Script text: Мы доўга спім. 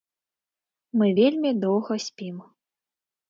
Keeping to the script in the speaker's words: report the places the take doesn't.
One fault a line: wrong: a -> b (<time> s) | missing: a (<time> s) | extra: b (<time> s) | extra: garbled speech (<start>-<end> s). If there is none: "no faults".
extra: вельмі (1.2 s)